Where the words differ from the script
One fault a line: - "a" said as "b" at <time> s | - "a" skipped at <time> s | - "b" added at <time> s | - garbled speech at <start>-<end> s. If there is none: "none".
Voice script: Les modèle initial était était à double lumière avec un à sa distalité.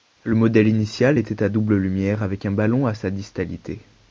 - "Les" said as "Le" at 0.2 s
- "était" skipped at 1.4 s
- "ballon" added at 2.5 s